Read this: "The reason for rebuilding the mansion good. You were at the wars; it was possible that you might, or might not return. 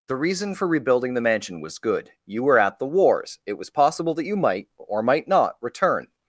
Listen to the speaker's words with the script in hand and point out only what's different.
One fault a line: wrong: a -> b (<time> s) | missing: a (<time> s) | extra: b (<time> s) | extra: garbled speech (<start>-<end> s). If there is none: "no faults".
extra: was (1.6 s)